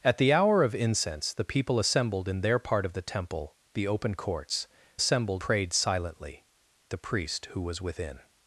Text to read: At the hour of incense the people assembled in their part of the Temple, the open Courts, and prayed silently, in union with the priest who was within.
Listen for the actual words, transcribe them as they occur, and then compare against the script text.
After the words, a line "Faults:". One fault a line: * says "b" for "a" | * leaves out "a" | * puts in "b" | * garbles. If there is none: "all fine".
At the hour of incense the people assembled in their part of the Temple, the open Courts, assembled prayed silently, the priest who was within.
Faults:
* says "assembled" for "and"
* leaves out "in union with"